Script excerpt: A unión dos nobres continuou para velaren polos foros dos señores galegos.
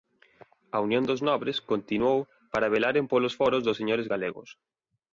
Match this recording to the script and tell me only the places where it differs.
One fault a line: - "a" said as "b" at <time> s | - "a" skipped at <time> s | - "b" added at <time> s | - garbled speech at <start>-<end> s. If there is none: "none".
none